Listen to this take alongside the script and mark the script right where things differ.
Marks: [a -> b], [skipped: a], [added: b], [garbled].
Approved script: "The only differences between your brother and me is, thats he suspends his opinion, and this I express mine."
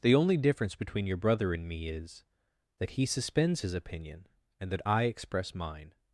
"The only [differences -> difference] between your brother and me is, [thats -> that] he suspends his opinion, and [this -> that] I express mine."